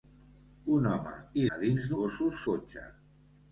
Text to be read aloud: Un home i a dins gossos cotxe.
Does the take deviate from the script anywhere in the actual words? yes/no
no